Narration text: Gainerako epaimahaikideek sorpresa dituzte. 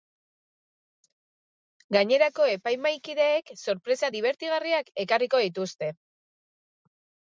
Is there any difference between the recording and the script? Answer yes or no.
yes